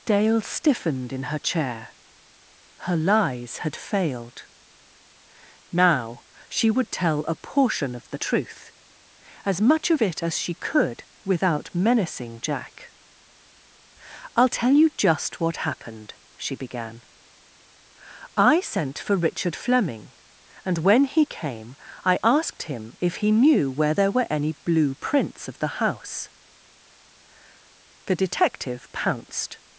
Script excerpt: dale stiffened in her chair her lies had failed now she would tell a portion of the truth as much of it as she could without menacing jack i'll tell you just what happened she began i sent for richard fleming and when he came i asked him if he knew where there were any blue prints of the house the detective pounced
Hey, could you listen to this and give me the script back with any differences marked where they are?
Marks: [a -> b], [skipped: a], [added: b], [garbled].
dale stiffened in her chair her lies had failed now she would tell a portion of the truth as much of it as she could without menacing jack i'll tell you just what happened she began i sent for richard fleming and when he came i asked him if he knew where there were any blue prints of the house the detective pounced